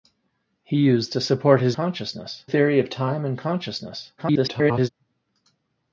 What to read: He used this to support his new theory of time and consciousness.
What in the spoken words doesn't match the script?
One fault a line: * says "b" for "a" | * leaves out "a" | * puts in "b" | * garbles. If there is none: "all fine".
* leaves out "this"
* says "consciousness" for "new"
* garbles